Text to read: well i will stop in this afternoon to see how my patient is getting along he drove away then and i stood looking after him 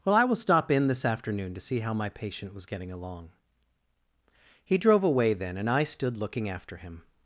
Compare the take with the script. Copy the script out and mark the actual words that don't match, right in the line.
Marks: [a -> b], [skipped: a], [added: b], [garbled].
well i will stop in this afternoon to see how my patient [is -> was] getting along he drove away then and i stood looking after him